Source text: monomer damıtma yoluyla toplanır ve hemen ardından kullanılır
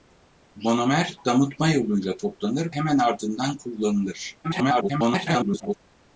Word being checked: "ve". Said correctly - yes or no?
no